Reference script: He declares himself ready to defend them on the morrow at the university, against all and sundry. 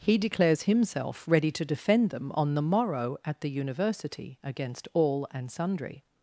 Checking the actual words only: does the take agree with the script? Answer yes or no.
yes